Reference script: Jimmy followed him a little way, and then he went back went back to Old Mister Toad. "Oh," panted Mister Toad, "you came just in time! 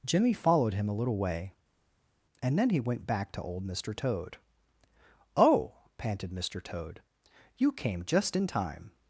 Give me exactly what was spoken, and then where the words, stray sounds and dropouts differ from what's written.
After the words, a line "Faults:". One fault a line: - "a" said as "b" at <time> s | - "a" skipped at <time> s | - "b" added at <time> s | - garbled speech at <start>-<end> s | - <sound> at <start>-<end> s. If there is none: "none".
Jimmy followed him a little way, and then he went back to Old Mister Toad. "Oh," panted Mister Toad, "you came just in time!
Faults:
- "went back" skipped at 3.3 s